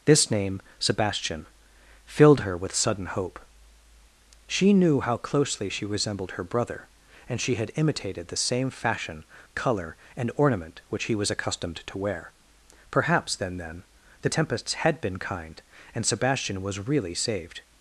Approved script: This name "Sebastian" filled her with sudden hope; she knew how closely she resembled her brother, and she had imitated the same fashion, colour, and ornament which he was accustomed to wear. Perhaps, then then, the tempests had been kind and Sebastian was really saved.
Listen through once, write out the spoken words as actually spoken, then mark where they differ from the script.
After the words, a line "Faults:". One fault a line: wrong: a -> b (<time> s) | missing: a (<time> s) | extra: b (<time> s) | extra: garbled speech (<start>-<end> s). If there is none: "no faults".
This name "Sebastian" filled her with sudden hope; she knew how closely she resembled her brother, and she had imitated the same fashion, colour, and ornament which he was accustomed to wear. Perhaps, then then, the tempests had been kind and Sebastian was really saved.
Faults:
no faults